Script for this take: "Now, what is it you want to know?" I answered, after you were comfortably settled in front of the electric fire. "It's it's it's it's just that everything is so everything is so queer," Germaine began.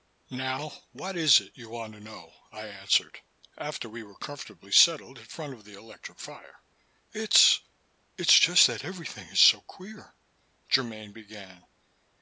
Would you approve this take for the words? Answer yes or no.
no